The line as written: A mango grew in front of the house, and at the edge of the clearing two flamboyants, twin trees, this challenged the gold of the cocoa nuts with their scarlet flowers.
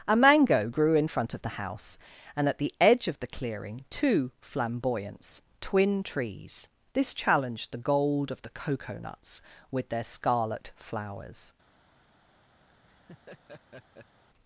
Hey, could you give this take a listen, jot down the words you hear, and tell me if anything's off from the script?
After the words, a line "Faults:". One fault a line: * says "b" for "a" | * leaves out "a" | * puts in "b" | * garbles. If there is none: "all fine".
A mango grew in front of the house, and at the edge of the clearing two flamboyants, twin trees, this challenged the gold of the cocoa nuts with their scarlet flowers.
Faults:
all fine